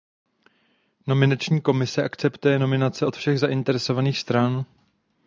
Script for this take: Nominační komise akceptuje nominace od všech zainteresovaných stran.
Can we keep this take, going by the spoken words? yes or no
yes